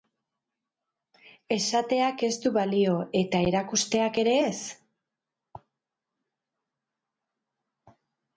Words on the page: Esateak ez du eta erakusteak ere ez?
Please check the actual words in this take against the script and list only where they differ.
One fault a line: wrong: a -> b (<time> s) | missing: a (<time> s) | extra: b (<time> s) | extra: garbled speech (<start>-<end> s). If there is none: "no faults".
extra: balio (2.5 s)